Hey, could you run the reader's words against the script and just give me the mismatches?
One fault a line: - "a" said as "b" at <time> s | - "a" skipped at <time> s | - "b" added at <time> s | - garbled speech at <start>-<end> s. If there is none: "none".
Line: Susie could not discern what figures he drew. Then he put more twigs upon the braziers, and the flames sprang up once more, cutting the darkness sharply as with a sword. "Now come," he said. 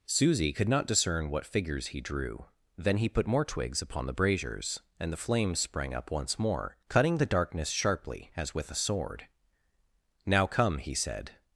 none